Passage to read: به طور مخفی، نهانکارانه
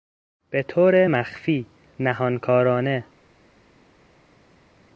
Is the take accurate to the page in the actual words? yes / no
yes